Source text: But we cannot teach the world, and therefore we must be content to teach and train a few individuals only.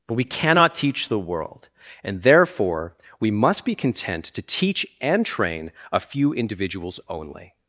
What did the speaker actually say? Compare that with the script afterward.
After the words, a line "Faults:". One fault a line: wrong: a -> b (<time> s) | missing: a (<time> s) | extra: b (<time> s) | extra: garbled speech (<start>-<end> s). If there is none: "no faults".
But we cannot teach the world, and therefore we must be content to teach and train a few individuals only.
Faults:
no faults